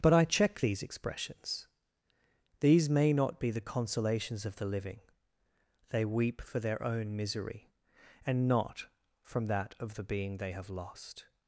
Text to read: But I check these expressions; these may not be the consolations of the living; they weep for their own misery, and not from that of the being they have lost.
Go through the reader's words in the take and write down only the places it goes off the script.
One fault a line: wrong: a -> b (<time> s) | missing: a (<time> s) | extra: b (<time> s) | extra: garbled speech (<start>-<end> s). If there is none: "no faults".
no faults